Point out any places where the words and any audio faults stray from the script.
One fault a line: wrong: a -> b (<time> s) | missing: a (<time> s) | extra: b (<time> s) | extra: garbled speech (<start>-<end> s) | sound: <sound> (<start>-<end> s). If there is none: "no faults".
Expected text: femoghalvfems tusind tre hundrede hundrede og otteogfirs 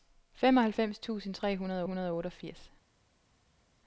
no faults